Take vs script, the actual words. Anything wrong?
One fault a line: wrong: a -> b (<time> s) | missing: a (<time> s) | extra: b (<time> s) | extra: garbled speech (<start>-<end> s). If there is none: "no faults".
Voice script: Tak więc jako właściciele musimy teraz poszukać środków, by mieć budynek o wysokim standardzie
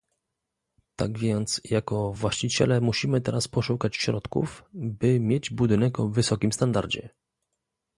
no faults